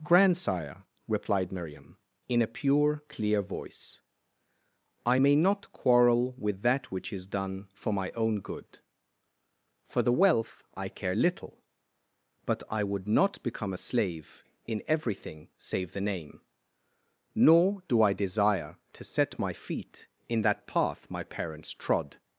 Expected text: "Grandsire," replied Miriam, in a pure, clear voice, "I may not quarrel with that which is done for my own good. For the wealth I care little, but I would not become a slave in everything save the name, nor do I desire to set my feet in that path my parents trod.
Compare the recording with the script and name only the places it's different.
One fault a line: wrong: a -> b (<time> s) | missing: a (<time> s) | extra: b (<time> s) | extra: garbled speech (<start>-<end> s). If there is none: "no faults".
no faults